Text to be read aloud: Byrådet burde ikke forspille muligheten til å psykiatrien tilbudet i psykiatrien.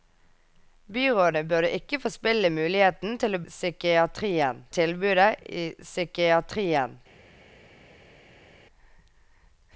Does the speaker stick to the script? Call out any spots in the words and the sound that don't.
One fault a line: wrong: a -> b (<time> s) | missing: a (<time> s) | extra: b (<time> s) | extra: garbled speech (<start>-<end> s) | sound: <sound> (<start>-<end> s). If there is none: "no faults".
no faults